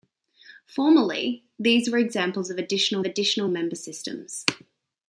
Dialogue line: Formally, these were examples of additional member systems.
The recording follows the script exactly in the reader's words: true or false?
false